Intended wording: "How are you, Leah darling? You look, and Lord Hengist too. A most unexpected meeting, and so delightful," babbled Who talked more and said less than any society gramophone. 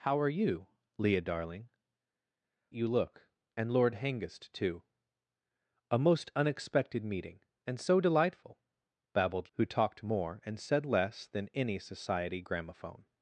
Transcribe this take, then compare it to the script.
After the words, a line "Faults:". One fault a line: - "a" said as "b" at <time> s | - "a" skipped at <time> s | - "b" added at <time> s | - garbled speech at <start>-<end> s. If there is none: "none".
"How are you, Leah darling? You look, and Lord Hengist too. A most unexpected meeting, and so delightful," babbled Who talked more and said less than any society gramophone.
Faults:
none